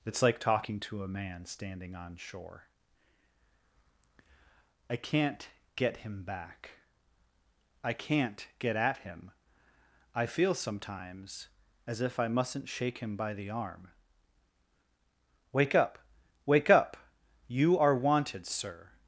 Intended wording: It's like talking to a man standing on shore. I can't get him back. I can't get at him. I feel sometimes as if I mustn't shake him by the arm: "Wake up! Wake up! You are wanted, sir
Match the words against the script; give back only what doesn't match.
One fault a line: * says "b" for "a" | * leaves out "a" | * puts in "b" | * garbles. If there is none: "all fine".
all fine